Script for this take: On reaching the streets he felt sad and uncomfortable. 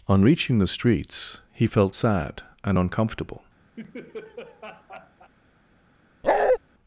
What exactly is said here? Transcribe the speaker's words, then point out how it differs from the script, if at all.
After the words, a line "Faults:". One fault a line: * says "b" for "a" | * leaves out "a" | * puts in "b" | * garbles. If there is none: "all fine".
On reaching the streets he felt sad and uncomfortable.
Faults:
all fine